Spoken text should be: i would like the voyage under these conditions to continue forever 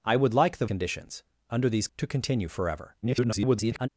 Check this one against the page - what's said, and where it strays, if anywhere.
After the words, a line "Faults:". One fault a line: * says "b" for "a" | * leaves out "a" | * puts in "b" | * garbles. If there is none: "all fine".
i would like the conditions under these to continue forever [garbled]
Faults:
* says "conditions" for "voyage"
* leaves out "conditions"
* garbles